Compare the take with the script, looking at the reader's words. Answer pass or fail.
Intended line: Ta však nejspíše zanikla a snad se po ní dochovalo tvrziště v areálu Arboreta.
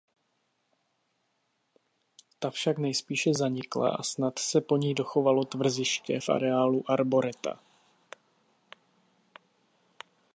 pass